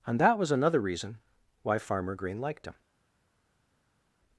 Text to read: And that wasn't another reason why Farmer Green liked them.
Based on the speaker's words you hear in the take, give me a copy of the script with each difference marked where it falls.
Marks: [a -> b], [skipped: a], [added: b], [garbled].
And that [wasn't -> was] another reason why Farmer Green liked [them. -> him]